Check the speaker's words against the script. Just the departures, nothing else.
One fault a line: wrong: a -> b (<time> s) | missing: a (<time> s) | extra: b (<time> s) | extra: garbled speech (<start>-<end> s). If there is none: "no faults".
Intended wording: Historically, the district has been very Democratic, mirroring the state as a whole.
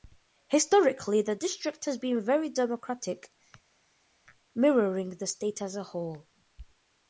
no faults